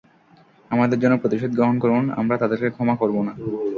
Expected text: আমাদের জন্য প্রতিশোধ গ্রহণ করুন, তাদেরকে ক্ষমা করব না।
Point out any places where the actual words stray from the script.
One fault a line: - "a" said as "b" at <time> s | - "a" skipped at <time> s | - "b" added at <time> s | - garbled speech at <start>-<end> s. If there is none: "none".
- "আমরা" added at 2.1 s